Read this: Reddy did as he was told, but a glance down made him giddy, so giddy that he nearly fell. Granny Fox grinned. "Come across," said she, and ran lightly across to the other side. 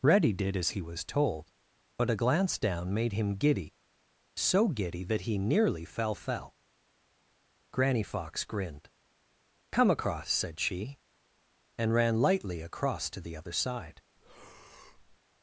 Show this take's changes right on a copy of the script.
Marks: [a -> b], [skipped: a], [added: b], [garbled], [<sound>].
Reddy did as he was told, but a glance down made him giddy, so giddy that he nearly fell. [added: fell] Granny Fox grinned. "Come across," said she, and ran lightly across to the other side. [breath]